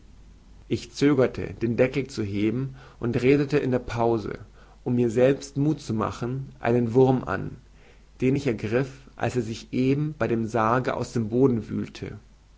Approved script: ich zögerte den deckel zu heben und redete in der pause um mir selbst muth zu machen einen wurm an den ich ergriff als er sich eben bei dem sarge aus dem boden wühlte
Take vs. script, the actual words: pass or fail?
pass